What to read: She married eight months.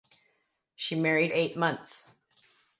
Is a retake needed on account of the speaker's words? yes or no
no